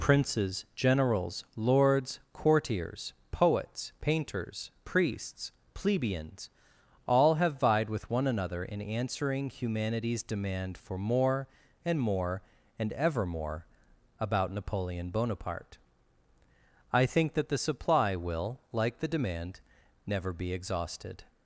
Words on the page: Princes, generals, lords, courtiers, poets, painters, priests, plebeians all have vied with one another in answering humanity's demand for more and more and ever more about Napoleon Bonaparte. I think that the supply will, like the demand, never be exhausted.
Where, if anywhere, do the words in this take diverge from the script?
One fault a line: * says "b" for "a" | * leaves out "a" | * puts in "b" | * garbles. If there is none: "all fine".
all fine